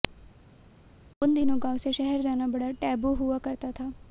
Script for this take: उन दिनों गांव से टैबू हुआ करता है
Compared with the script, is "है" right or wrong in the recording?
wrong